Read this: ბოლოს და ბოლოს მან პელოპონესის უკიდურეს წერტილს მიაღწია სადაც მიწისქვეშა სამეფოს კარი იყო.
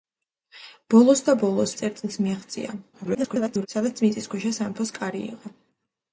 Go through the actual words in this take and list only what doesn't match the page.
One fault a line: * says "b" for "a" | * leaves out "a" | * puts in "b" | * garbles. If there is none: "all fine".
* leaves out "მან პელოპონესის უკიდურეს"
* garbles